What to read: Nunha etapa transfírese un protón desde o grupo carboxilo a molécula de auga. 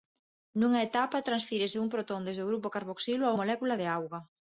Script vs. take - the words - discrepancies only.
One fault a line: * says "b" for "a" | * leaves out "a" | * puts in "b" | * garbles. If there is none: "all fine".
all fine